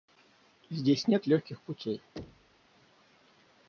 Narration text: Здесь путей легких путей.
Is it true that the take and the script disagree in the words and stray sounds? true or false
true